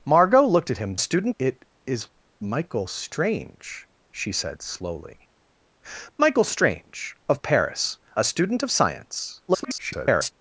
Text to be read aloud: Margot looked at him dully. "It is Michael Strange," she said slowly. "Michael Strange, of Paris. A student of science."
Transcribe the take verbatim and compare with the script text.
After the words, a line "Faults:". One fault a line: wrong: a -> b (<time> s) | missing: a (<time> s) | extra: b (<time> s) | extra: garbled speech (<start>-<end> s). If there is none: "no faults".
Margot looked at him student. "It is Michael Strange," she said slowly. "Michael Strange, of Paris. A student of science." [garbled]
Faults:
wrong: dully -> student (1.0 s)
extra: garbled speech (9.5-10.3 s)